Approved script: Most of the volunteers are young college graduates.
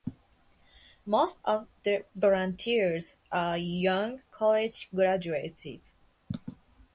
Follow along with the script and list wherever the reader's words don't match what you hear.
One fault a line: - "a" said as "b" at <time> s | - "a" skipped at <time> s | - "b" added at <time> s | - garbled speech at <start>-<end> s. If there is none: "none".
none